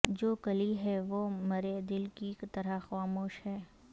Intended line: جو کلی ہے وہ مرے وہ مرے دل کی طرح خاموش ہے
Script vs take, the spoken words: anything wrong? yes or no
yes